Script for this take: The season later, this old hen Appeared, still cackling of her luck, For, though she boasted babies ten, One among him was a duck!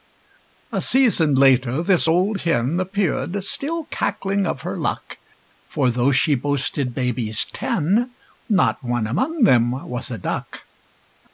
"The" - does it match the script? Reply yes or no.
no